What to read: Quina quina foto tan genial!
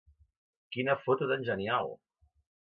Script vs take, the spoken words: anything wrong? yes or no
yes